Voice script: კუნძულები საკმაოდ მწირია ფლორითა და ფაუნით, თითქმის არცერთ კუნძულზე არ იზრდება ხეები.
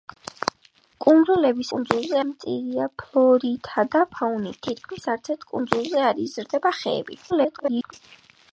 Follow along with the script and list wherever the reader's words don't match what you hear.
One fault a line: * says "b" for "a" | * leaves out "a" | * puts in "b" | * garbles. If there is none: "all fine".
* says "კუნძულზე" for "საკმაოდ"
* garbles